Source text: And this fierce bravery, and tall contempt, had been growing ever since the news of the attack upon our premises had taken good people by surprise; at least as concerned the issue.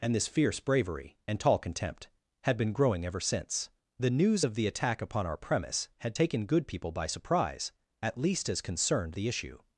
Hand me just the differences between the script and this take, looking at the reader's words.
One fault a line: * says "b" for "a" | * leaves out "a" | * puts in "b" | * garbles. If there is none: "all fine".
* says "premise" for "premises"